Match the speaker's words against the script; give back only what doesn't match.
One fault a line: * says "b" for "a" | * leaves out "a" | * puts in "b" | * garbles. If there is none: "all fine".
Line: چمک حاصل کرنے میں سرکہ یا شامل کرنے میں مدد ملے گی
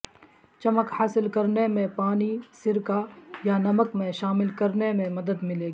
* puts in "پانی"
* puts in "نمک میں"